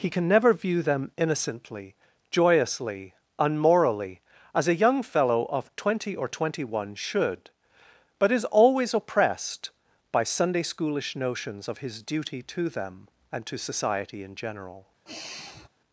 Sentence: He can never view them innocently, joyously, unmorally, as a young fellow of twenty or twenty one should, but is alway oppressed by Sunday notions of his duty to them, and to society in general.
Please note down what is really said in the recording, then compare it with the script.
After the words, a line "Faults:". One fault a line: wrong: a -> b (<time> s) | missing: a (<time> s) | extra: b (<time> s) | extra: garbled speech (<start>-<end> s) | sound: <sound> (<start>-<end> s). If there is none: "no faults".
He can never view them innocently, joyously, unmorally, as a young fellow of twenty or twenty one should, but is always oppressed by Sunday schoolish notions of his duty to them, and to society in general.
Faults:
wrong: alway -> always (8.4 s)
extra: schoolish (10.6 s)
sound: sigh (15.1-15.7 s)